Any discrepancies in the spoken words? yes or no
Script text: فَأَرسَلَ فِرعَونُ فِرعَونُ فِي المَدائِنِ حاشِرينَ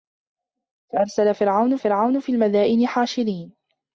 no